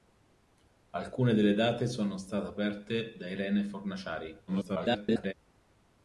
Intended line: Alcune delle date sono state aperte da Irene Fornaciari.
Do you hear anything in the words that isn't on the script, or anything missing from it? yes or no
yes